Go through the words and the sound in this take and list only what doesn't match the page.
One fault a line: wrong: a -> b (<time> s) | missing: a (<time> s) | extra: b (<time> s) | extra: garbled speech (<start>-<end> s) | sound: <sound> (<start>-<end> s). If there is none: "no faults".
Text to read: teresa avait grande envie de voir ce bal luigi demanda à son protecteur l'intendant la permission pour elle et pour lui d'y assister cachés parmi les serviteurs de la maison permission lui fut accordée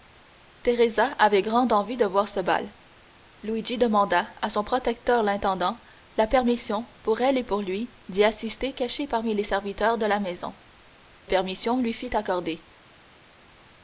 no faults